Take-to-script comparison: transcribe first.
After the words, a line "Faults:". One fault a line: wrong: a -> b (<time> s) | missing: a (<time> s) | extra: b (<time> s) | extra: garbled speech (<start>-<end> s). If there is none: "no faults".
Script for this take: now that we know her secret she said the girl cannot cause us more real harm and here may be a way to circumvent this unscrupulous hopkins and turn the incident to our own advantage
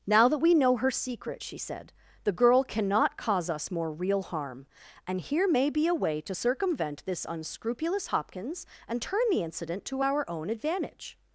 now that we know her secret she said the girl cannot cause us more real harm and here may be a way to circumvent this unscrupulous hopkins and turn the incident to our own advantage
Faults:
no faults